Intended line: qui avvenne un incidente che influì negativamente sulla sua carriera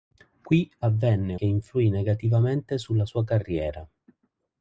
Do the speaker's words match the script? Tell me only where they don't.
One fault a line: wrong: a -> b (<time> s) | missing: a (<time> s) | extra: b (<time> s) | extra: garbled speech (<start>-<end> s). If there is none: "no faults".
missing: un incidente (1.4 s)